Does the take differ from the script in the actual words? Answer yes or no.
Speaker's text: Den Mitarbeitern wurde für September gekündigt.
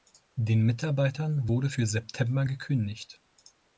no